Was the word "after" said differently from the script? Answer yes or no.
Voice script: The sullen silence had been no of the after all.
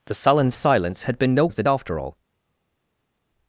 no